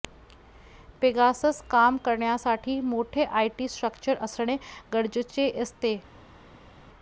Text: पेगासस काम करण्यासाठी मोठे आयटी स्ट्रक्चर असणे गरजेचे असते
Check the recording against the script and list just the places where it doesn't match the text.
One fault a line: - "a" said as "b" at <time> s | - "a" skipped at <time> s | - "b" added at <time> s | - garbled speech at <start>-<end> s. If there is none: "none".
none